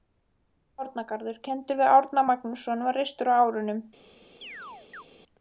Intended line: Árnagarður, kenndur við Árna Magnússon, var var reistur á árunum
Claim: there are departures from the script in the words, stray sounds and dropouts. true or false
true